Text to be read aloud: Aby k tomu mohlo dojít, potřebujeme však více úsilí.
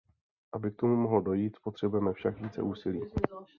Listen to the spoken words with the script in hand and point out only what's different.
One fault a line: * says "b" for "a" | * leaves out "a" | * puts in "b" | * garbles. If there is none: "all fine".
all fine